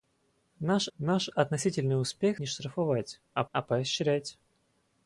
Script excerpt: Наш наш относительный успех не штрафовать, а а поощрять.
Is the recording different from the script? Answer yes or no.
no